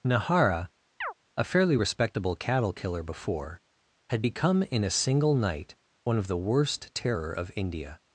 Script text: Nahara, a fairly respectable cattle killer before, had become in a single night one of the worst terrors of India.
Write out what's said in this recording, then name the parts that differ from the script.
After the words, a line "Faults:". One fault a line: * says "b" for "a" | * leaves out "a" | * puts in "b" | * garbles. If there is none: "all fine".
Nahara, a fairly respectable cattle killer before, had become in a single night one of the worst terror of India.
Faults:
* says "terror" for "terrors"